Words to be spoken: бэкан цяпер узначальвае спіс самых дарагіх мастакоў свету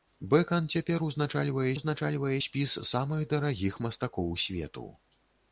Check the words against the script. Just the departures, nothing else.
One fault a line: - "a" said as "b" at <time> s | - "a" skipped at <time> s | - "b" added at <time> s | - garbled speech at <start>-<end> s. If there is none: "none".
- "узначальвае" added at 1.7 s